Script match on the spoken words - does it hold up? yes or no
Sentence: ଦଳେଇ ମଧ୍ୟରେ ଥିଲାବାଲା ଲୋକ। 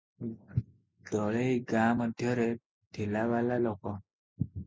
no